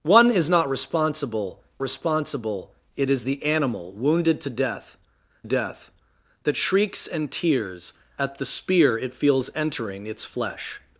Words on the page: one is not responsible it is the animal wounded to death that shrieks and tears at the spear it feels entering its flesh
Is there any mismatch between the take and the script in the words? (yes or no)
yes